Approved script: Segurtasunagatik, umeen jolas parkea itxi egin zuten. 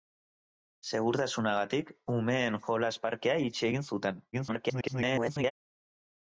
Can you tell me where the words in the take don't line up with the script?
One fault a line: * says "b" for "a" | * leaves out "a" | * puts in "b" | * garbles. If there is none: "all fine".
* garbles